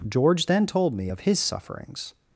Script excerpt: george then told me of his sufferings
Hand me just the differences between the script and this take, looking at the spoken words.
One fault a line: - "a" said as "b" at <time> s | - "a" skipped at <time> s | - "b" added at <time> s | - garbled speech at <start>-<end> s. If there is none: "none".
none